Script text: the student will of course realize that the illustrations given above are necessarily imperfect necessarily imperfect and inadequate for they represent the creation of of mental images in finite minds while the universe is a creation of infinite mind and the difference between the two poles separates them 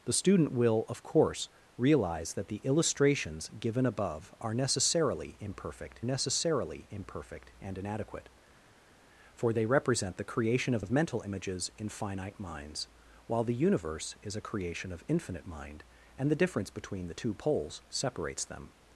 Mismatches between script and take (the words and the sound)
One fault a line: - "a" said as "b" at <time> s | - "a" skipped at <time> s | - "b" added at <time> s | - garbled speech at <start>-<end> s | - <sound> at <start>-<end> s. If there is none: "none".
none